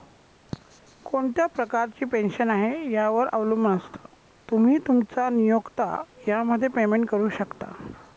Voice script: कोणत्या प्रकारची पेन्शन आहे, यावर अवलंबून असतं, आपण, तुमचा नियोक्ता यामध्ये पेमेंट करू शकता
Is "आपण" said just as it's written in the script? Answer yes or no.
no